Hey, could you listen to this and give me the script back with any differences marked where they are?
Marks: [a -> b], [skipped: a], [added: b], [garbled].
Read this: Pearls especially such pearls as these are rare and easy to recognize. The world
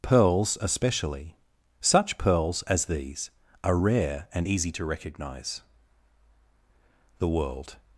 Pearls especially such pearls as these are rare and easy to recognize. The world